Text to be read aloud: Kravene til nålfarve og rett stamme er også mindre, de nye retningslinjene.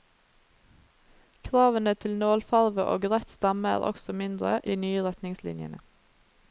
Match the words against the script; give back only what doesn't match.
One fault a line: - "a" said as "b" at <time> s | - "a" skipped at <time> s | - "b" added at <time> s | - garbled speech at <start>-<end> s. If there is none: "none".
none